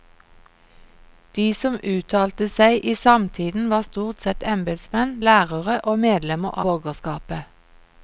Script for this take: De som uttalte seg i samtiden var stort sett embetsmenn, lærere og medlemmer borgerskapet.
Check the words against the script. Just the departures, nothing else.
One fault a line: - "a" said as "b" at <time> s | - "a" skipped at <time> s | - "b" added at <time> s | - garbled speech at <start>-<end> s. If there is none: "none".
none